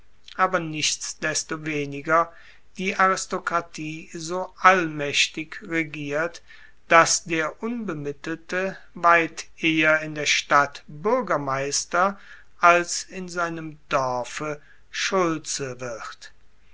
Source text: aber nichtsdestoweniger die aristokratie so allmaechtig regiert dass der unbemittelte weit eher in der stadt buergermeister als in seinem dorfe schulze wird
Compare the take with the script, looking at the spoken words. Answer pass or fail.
pass